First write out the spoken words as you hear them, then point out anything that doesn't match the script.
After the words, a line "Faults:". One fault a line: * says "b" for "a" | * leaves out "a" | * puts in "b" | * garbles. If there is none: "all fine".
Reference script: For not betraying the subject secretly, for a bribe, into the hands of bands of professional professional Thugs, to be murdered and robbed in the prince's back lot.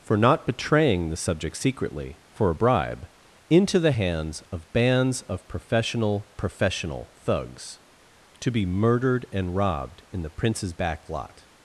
For not betraying the subject secretly, for a bribe, into the hands of bands of professional professional Thugs, to be murdered and robbed in the prince's back lot.
Faults:
all fine